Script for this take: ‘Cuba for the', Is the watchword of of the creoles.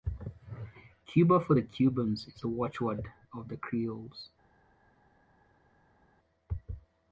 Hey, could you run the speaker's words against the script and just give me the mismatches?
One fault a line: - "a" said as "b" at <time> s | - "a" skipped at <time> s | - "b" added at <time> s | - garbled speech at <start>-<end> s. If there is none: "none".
- "Cubans" added at 1.6 s
- "of" skipped at 3.5 s